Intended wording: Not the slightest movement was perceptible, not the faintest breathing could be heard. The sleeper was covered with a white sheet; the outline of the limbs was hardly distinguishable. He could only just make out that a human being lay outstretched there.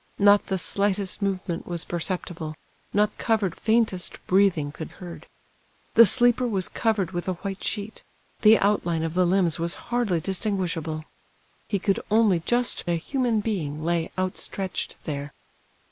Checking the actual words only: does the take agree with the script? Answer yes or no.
no